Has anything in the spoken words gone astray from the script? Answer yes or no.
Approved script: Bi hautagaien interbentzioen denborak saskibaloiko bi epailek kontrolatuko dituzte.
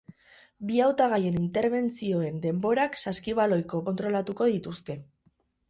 yes